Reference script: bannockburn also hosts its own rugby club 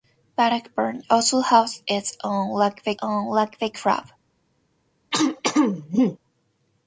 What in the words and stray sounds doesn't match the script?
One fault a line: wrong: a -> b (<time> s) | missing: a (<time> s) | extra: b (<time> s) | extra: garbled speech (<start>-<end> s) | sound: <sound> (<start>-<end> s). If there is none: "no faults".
extra: own rugby (3.0 s)
sound: throat clearing (5.1-6.2 s)